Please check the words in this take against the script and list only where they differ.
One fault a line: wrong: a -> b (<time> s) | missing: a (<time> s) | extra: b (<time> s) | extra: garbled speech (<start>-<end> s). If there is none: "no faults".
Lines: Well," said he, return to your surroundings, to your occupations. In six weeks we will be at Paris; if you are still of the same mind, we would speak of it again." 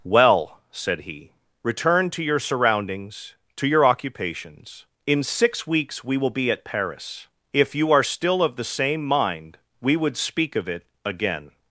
no faults